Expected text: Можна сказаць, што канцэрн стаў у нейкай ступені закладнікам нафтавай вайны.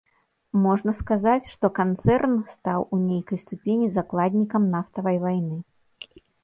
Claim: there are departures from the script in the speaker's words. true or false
false